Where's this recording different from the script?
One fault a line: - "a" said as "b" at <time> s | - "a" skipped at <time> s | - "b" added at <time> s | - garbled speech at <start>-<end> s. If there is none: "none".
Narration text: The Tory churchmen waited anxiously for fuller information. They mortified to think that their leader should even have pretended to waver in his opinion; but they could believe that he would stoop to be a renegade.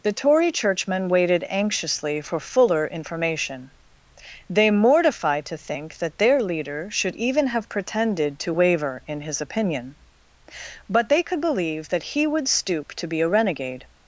none